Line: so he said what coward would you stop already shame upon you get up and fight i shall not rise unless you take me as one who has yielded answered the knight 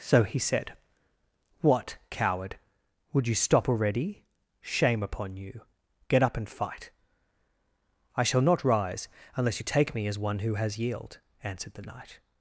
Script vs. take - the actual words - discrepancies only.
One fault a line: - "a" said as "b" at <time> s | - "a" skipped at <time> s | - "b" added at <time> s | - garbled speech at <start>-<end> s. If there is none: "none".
- "yielded" said as "yield" at 10.8 s